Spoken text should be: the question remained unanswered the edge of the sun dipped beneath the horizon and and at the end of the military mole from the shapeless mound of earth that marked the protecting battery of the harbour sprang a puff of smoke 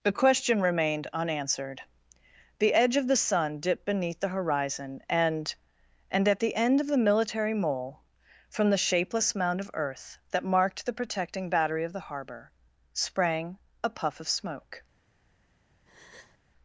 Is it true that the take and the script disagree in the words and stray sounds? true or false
true